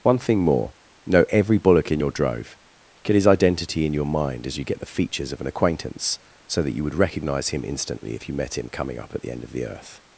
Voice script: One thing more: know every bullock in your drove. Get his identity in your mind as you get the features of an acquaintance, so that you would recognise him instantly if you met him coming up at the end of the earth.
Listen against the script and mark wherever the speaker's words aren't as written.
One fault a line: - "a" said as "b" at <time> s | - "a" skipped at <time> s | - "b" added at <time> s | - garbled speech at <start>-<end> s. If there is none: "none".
none